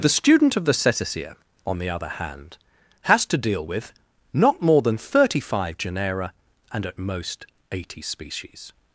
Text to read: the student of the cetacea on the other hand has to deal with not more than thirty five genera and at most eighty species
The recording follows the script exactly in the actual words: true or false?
true